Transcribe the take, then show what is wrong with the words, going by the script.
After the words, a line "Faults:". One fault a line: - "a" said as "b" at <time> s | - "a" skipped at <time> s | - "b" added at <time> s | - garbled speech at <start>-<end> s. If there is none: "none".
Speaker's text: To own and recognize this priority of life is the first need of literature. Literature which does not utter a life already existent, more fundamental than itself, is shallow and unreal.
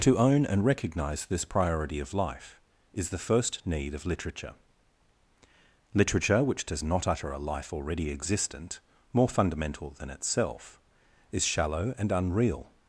To own and recognize this priority of life is the first need of literature. Literature which does not utter a life already existent, more fundamental than itself, is shallow and unreal.
Faults:
none